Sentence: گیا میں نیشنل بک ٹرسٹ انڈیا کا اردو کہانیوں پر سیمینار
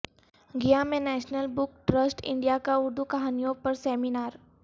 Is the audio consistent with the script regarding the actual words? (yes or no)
yes